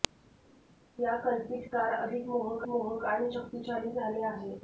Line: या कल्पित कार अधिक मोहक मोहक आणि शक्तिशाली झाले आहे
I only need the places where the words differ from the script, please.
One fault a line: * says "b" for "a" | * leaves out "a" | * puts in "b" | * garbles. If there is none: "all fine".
all fine